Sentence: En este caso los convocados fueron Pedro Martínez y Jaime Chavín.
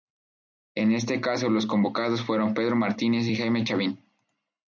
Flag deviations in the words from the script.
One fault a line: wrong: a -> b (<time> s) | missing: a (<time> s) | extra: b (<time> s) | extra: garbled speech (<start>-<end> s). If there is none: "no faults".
no faults